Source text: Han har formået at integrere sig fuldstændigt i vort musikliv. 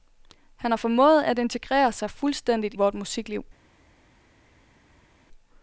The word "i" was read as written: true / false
false